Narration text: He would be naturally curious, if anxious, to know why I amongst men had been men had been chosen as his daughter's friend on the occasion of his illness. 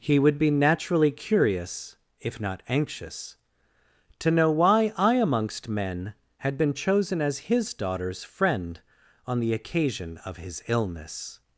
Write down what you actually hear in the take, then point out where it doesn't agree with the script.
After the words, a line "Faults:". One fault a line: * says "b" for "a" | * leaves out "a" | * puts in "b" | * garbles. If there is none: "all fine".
He would be naturally curious, if not anxious, to know why I amongst men had been chosen as his daughter's friend on the occasion of his illness.
Faults:
* puts in "not"
* leaves out "men had been"